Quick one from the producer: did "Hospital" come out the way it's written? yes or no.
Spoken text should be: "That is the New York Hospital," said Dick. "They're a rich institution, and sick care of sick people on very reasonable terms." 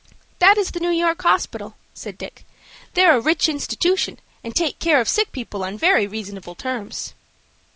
yes